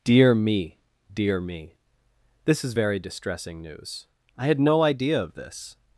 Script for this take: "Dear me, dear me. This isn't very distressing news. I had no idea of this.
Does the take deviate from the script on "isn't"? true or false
true